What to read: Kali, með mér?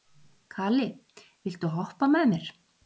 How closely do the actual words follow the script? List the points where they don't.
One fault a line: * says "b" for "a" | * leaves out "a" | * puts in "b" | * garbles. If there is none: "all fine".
* puts in "viltu hoppa"